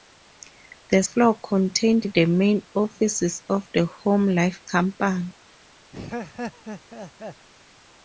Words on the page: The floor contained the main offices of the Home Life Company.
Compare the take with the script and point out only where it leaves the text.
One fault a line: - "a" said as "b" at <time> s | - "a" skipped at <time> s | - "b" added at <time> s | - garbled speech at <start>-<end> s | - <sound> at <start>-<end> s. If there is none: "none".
- laugh at 5.9-7.5 s